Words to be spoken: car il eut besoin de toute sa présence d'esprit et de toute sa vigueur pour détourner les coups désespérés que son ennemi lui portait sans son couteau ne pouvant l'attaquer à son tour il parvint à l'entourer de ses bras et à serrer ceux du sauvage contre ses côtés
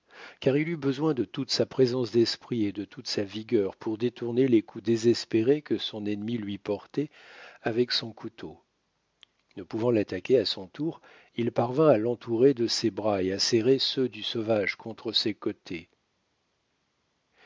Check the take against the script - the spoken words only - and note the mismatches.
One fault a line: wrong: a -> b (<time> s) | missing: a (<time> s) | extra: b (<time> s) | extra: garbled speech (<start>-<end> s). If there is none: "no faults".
wrong: sans -> avec (7.6 s)